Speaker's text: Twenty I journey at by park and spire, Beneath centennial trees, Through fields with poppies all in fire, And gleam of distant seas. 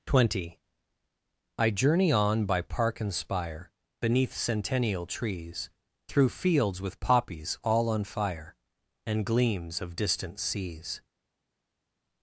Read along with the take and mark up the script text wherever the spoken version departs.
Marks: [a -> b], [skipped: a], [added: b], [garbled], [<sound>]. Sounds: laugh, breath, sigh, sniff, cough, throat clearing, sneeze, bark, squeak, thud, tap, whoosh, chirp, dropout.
Twenty I journey [at -> on] by park and spire, Beneath centennial trees, Through fields with poppies all [in -> on] fire, And [gleam -> gleams] of distant seas.